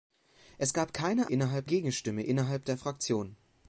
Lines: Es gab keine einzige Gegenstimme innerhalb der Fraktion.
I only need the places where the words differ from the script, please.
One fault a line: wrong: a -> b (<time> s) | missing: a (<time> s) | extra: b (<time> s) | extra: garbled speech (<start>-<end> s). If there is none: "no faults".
wrong: einzige -> innerhalb (1.3 s)